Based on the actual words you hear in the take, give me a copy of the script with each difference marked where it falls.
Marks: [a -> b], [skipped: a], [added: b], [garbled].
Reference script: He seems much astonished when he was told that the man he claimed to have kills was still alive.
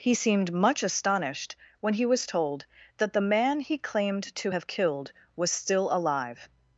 He [seems -> seemed] much astonished when he was told that the man he claimed to have [kills -> killed] was still alive.